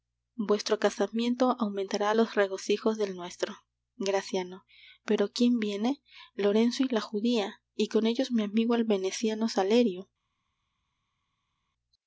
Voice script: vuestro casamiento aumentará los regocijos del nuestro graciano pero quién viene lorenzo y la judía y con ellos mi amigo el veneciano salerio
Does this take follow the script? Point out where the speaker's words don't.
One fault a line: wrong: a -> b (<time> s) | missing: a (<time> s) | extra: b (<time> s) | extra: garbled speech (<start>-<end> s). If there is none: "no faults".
no faults